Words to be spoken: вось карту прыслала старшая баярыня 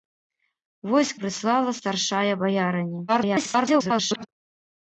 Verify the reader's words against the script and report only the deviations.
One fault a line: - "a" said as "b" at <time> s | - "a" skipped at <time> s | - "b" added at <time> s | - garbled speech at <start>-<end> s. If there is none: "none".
- "карту" skipped at 1.1 s
- garbled speech at 3.1-4.3 s